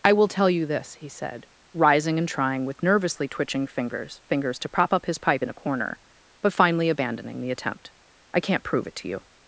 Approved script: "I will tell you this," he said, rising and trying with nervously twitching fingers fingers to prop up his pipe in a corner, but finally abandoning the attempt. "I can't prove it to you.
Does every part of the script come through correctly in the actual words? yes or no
yes